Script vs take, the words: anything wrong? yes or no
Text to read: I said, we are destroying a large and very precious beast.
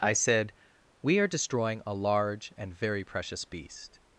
no